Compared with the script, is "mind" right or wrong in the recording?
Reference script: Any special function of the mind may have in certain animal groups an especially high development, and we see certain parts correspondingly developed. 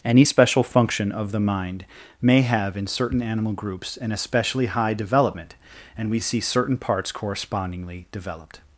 right